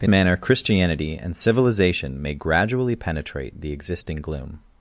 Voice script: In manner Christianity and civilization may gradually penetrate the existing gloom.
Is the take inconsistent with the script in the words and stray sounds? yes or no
no